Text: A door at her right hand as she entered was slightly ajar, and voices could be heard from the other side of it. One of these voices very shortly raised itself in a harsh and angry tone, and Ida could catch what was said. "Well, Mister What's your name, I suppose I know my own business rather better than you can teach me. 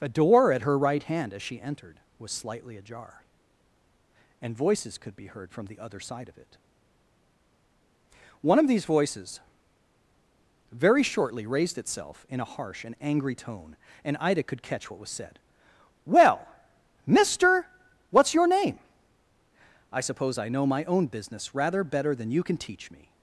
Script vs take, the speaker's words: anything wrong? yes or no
no